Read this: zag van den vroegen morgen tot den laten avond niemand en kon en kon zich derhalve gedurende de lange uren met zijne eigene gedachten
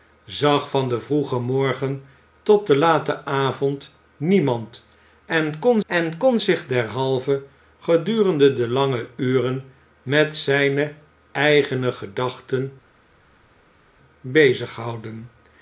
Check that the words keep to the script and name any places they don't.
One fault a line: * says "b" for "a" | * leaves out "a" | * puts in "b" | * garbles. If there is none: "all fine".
all fine